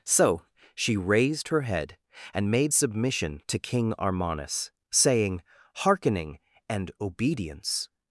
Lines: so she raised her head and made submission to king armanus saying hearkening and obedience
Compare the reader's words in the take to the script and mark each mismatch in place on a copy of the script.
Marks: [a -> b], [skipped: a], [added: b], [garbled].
so she raised her head and made submission to king armanus saying hearkening and obedience